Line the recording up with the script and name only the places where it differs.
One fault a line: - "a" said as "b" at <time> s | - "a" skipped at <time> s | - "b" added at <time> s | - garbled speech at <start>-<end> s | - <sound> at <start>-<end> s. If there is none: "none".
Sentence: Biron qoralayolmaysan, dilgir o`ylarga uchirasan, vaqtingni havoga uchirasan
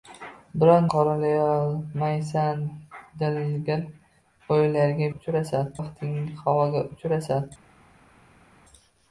none